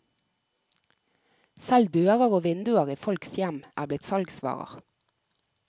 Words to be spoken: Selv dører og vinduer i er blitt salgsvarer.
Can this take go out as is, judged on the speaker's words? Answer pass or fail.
fail